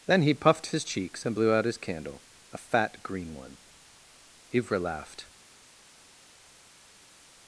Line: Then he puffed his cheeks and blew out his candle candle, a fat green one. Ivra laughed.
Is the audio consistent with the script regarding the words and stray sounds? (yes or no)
no